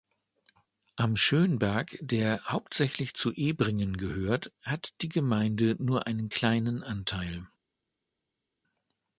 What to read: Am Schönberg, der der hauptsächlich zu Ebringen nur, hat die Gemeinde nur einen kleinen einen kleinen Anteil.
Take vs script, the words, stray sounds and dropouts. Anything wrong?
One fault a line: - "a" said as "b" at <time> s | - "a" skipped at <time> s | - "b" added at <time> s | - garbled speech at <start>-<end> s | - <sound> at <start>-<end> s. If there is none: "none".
- "der" skipped at 2.5 s
- "nur" said as "gehört" at 4.0 s
- "einen kleinen" skipped at 6.8 s